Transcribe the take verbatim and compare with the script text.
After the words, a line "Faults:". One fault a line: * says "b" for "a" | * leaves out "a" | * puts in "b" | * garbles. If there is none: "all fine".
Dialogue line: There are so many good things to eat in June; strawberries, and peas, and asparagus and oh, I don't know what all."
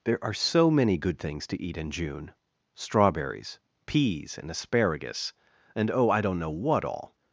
There are so many good things to eat in June; strawberries, peas, and asparagus and oh, I don't know what all."
Faults:
* leaves out "and"